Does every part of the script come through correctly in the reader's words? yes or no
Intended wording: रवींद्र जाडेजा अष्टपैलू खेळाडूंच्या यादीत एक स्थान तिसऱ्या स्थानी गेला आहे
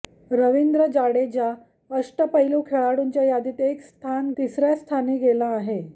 yes